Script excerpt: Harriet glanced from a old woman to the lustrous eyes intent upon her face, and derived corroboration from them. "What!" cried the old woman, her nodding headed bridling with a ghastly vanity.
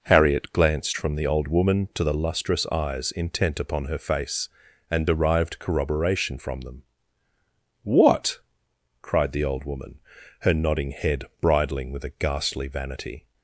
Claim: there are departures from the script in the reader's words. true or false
true